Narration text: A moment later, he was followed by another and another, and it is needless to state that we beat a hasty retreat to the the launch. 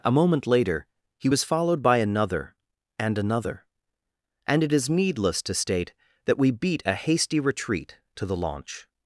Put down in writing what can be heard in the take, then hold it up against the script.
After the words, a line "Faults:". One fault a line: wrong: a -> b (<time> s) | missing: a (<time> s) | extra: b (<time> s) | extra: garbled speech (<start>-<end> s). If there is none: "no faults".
A moment later, he was followed by another and another, and it is needless to state that we beat a hasty retreat to the launch.
Faults:
missing: the (8.3 s)